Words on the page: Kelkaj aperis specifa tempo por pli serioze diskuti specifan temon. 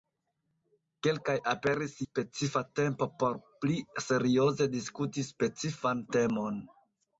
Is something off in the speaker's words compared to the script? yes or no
no